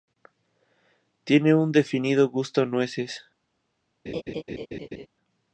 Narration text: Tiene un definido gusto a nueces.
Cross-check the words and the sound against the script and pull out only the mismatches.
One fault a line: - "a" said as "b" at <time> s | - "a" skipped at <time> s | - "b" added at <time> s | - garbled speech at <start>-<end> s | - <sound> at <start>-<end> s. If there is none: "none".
- laugh at 4.1-5.1 s